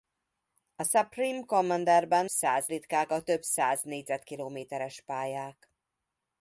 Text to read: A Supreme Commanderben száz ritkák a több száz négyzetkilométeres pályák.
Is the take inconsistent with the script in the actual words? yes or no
no